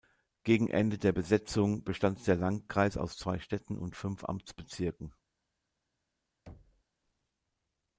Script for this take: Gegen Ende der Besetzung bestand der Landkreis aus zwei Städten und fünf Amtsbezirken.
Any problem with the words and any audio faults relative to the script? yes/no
yes